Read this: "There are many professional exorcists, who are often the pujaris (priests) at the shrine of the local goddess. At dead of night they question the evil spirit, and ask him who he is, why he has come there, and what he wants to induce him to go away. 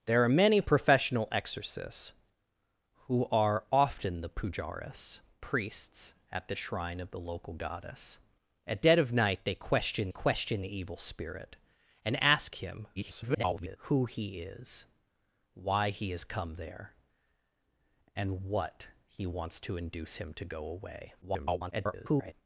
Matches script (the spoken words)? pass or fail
fail